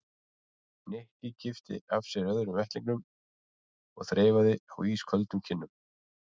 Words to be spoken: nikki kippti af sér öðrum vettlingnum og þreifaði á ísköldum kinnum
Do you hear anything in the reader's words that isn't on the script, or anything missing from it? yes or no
no